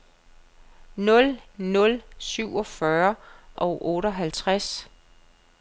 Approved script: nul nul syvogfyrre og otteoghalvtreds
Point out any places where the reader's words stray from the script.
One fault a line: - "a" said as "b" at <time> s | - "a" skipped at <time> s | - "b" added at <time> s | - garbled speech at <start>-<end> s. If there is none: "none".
none